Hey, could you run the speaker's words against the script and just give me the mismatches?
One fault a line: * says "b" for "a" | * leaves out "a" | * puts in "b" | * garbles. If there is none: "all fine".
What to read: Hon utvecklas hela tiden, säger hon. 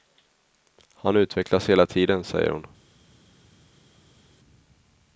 * says "Han" for "Hon"